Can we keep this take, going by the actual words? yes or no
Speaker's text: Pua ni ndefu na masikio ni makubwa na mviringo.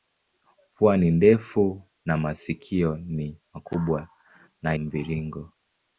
yes